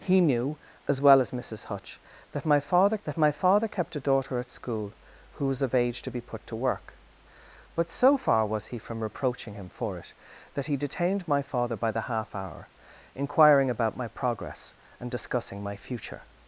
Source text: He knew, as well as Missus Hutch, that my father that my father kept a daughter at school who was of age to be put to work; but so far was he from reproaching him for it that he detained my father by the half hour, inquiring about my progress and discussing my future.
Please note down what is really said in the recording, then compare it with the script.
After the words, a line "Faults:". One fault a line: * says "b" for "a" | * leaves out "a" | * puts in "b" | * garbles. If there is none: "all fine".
He knew, as well as Missus Hutch, that my father that my father kept a daughter at school who was of age to be put to work; but so far was he from reproaching him for it that he detained my father by the half hour, inquiring about my progress and discussing my future.
Faults:
all fine